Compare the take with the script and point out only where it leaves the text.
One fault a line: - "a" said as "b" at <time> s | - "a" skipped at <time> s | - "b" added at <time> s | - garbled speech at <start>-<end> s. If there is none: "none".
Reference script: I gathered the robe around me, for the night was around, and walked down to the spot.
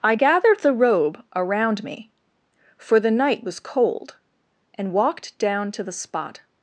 - "around" said as "cold" at 3.6 s